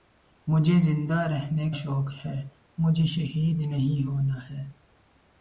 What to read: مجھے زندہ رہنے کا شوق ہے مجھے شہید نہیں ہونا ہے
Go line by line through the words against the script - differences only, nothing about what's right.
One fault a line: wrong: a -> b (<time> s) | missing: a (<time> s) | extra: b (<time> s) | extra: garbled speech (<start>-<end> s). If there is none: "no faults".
missing: کا (1.7 s)